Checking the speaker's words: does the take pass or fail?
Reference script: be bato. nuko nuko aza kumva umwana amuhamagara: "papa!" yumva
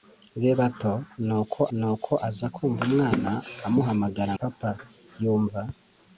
pass